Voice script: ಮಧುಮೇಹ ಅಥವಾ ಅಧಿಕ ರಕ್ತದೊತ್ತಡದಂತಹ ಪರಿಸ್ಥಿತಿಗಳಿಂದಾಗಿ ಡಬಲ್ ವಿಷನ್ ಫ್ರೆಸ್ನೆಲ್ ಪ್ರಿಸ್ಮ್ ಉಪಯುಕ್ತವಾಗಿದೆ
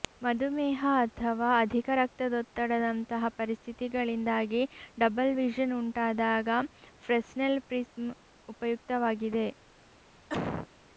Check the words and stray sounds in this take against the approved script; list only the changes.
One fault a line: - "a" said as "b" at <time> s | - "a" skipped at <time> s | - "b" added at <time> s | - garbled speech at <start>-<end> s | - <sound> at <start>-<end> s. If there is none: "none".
- "ಉಂಟಾದಾಗ" added at 5.8 s
- cough at 10.3-10.7 s